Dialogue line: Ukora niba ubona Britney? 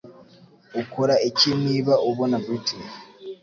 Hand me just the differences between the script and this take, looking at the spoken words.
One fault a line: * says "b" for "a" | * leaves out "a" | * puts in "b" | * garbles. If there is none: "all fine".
* puts in "iki"